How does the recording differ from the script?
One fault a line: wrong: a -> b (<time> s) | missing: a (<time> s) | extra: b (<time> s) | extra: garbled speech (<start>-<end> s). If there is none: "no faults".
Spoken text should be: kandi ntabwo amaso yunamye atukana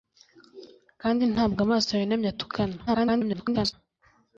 extra: garbled speech (2.9-3.7 s)